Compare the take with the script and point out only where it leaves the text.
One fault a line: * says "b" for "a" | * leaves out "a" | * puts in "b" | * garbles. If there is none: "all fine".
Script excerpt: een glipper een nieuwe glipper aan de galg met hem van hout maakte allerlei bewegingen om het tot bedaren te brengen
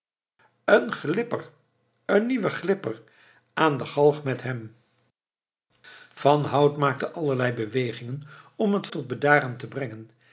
all fine